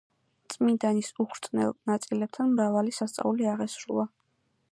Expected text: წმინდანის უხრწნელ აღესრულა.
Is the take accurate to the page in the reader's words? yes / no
no